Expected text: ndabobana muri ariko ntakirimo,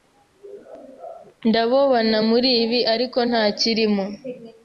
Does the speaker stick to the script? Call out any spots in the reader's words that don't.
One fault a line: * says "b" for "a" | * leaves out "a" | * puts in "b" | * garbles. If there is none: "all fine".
* puts in "ibi"